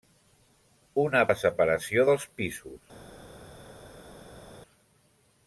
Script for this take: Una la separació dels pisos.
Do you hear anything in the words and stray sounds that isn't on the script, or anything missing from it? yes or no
no